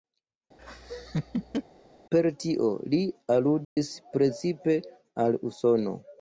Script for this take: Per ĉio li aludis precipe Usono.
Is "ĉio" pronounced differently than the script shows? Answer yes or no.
yes